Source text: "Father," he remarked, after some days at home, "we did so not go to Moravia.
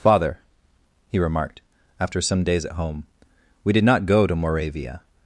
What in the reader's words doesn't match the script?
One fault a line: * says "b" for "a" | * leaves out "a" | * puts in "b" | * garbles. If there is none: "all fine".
* leaves out "so"